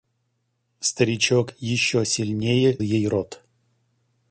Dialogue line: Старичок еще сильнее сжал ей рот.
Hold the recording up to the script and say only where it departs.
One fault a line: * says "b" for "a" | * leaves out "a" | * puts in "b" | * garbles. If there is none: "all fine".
* leaves out "сжал"